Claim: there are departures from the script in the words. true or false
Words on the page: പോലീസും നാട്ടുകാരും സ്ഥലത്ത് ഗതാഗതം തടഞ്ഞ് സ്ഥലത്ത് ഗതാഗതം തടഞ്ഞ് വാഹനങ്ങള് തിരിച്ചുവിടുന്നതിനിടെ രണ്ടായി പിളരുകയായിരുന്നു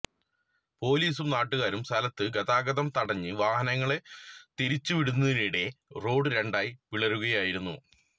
true